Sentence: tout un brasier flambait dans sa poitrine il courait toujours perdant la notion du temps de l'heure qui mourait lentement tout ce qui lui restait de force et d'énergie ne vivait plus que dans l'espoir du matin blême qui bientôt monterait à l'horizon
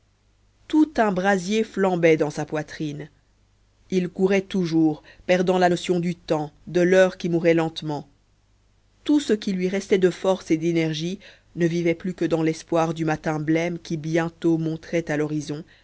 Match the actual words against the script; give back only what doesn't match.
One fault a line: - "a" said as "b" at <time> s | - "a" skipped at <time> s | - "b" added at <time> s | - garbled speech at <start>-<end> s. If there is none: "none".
none